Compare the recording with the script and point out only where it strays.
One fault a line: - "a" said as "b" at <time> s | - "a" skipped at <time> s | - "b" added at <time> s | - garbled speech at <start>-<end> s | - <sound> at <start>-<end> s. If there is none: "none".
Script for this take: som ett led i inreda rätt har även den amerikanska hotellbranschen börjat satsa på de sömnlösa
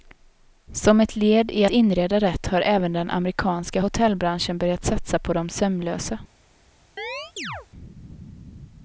- chirp at 7.0-7.7 s